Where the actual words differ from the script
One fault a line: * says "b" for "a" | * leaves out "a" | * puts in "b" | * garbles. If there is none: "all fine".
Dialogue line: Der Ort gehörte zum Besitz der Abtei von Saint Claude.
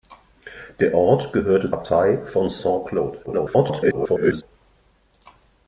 * leaves out "zum Besitz der"
* garbles